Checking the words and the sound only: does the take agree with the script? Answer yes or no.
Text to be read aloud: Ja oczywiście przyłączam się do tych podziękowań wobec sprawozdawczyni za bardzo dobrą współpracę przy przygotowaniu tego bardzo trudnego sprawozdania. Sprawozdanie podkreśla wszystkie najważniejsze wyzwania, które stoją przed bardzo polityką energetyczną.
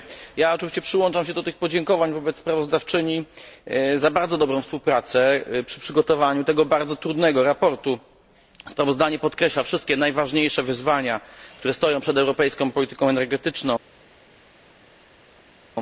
no